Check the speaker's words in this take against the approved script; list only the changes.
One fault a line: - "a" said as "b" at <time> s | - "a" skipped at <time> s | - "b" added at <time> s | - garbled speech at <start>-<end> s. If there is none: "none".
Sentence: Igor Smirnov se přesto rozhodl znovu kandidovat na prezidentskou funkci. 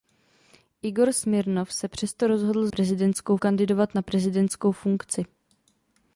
- "znovu" said as "prezidentskou" at 2.7 s